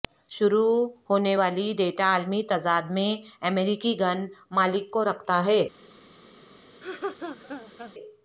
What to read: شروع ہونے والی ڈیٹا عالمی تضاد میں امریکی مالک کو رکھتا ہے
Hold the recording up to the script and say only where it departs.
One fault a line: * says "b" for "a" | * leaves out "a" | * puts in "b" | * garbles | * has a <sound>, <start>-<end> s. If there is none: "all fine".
* puts in "گن"
* has a laugh, 6.8-7.9 s